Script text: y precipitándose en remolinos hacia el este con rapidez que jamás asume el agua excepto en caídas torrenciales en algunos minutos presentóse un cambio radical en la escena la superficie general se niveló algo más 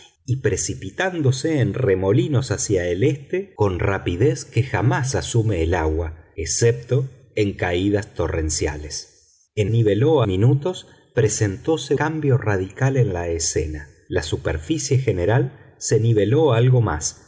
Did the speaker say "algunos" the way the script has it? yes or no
no